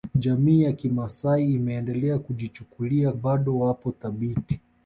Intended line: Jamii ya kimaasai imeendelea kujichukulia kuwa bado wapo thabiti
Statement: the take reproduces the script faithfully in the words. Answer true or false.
false